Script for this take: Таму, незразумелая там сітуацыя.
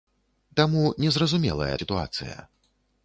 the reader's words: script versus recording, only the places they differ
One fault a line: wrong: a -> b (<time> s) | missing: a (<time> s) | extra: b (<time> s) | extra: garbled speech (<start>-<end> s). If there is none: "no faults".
missing: там (1.8 s)